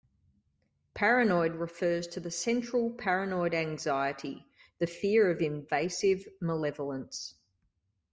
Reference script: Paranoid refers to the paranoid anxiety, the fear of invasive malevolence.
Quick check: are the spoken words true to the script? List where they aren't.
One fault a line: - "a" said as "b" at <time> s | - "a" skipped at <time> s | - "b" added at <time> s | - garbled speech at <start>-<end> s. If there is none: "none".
- "central" added at 2.3 s